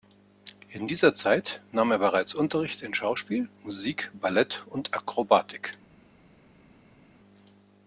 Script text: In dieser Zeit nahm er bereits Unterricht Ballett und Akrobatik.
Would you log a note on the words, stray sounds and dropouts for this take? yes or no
yes